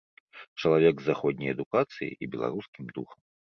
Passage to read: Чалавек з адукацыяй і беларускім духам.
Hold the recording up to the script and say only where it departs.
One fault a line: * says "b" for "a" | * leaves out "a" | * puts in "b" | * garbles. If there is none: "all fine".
* puts in "заходняй"